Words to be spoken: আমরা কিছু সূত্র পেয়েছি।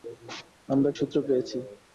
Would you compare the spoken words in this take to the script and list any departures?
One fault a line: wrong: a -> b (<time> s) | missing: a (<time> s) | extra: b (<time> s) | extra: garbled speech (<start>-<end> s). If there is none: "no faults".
missing: কিছু (0.9 s)